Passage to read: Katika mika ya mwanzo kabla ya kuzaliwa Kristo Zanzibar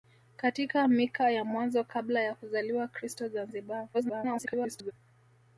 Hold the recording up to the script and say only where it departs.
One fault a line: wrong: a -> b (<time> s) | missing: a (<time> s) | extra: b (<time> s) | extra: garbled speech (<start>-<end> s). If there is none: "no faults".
extra: garbled speech (3.9-4.9 s)